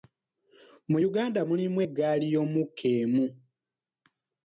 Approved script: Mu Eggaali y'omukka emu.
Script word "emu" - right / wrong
right